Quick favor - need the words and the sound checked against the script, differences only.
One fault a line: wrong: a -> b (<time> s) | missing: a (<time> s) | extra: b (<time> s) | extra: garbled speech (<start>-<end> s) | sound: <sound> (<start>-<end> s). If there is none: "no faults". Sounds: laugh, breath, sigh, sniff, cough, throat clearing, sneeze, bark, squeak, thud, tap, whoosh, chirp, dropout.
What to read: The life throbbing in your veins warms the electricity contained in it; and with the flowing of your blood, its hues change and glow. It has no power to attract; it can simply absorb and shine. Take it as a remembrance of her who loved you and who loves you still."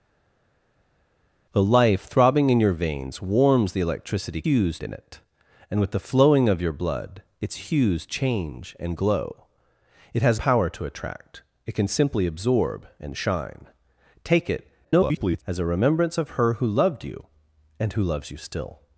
wrong: contained -> hues (4.4 s)
missing: no (10.4 s)
extra: garbled speech (14.8-15.4 s)